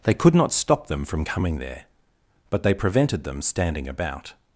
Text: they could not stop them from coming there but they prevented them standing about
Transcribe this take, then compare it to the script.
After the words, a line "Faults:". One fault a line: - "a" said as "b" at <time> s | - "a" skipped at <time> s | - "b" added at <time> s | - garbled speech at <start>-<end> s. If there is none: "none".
they could not stop them from coming there but they prevented them standing about
Faults:
none